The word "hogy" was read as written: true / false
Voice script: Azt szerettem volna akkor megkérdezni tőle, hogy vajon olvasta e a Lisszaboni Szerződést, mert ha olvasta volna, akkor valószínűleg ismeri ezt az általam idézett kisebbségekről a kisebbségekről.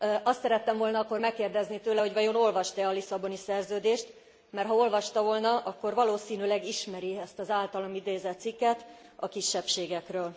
true